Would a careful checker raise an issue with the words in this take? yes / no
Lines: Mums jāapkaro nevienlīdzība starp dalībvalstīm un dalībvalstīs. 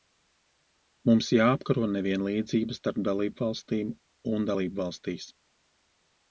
no